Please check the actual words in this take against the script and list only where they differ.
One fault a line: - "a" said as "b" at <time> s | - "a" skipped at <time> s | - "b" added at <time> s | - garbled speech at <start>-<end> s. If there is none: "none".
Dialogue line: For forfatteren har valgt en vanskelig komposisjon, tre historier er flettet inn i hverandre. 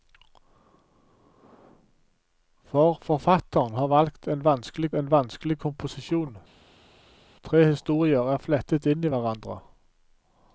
- "en vanskelig" added at 4.9 s